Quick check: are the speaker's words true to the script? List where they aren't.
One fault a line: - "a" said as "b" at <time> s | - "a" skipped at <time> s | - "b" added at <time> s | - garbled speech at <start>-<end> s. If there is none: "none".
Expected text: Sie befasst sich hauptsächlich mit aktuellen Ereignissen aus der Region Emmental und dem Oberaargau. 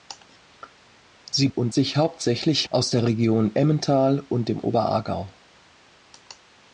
- "befasst" said as "und" at 1.5 s
- "mit aktuellen Ereignissen" skipped at 2.7 s